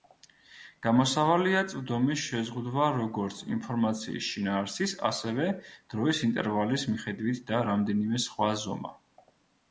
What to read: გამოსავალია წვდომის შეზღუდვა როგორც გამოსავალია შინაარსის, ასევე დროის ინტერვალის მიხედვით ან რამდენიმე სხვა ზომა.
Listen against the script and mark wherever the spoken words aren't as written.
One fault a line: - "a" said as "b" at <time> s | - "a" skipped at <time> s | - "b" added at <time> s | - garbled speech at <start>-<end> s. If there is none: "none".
- "გამოსავალია" said as "ინფორმაციის" at 3.6 s
- "ან" said as "და" at 7.5 s